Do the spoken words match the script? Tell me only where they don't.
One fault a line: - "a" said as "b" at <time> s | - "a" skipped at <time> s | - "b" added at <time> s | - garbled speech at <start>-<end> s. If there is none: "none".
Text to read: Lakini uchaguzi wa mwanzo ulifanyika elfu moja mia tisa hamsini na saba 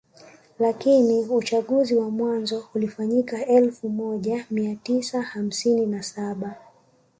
none